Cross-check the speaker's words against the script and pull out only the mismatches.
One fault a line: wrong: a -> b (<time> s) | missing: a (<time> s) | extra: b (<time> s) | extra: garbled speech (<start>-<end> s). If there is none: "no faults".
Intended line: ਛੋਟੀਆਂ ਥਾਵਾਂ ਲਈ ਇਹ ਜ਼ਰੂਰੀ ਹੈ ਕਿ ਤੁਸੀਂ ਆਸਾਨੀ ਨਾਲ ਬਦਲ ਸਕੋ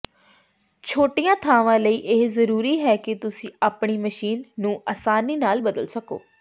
extra: ਆਪਣੀ ਮਸ਼ੀਨ ਨੂੰ (3.6 s)